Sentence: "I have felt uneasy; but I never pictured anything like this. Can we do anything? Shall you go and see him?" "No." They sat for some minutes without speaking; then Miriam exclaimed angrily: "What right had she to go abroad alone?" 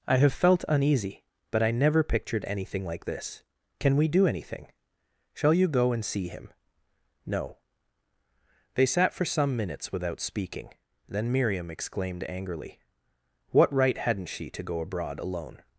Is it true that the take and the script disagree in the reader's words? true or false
true